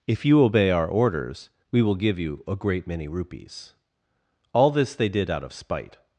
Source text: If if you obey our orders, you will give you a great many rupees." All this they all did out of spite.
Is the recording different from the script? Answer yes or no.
yes